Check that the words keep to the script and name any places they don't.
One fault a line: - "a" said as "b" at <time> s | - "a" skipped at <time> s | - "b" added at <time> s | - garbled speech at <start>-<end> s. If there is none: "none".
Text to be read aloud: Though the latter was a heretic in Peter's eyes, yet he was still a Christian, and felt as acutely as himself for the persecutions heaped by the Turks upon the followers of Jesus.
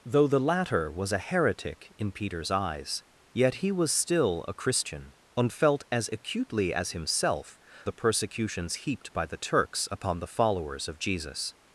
- "for" skipped at 7.6 s